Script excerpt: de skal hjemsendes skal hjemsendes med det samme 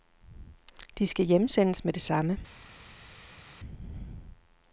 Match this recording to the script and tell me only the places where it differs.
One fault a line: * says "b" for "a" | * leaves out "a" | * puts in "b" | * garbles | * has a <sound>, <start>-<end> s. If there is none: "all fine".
* leaves out "skal hjemsendes"